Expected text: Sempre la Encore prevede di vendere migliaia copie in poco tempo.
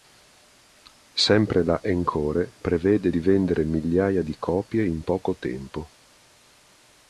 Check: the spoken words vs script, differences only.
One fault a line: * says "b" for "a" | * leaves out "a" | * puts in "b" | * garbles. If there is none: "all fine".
* puts in "di"